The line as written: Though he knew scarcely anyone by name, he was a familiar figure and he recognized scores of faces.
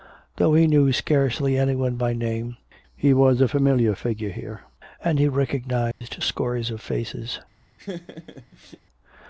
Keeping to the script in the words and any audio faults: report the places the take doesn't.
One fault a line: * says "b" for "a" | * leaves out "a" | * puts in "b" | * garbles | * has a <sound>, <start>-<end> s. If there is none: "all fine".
* puts in "here"
* has a dropout, 5.9-6.0 s
* has a laugh, 7.8-8.8 s